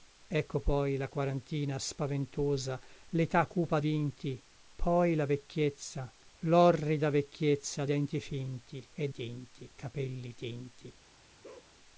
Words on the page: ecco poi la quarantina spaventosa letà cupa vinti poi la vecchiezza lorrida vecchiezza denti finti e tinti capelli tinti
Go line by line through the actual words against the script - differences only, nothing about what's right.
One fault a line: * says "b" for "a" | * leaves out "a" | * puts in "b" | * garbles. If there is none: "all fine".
all fine